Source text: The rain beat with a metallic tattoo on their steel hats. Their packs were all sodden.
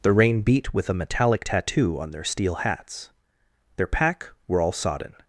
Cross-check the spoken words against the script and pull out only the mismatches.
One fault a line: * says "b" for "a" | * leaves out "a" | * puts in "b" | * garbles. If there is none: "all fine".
* says "pack" for "packs"